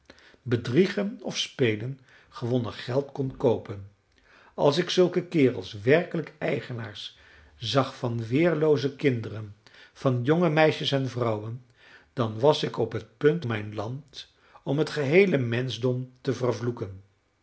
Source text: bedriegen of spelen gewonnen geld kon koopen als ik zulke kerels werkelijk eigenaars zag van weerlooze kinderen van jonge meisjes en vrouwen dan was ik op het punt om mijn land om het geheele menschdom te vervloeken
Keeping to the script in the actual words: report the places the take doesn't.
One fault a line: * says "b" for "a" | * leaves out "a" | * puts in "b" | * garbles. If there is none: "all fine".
* leaves out "om"